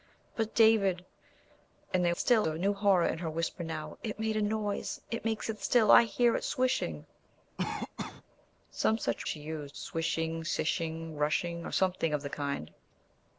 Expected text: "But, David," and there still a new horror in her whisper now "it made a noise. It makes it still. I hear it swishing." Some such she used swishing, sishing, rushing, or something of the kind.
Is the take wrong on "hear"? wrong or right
right